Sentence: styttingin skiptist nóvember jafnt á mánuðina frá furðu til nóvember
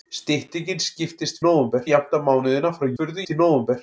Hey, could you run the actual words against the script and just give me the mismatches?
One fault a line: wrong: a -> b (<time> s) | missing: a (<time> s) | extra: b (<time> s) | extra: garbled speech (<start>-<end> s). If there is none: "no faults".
no faults